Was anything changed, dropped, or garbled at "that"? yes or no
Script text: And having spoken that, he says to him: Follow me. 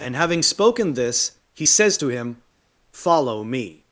yes